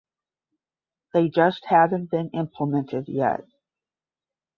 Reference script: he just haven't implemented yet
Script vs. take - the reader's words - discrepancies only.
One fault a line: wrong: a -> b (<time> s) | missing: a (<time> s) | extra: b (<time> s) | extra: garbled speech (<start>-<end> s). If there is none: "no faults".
wrong: he -> they (1.1 s)
extra: been (2.1 s)